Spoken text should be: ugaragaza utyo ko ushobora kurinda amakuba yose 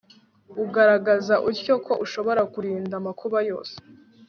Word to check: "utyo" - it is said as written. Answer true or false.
true